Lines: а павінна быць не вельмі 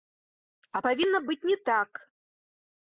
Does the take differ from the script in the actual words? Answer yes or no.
yes